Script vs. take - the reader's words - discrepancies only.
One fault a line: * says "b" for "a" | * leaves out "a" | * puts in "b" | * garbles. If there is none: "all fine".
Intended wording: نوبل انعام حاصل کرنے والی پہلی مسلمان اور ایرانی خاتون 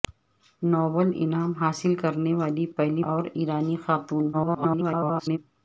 * leaves out "مسلمان"
* garbles